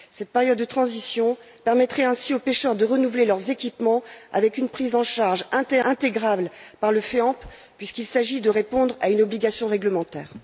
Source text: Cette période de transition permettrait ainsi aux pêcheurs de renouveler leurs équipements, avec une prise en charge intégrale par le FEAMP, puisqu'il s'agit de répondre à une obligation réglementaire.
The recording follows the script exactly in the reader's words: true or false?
true